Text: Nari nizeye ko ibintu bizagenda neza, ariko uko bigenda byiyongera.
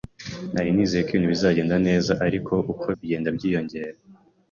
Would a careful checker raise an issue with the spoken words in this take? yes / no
no